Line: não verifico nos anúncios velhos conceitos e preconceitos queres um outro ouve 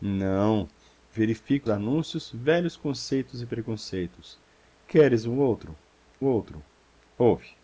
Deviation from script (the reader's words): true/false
true